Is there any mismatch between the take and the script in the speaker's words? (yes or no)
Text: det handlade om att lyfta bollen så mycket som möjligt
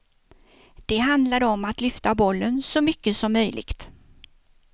no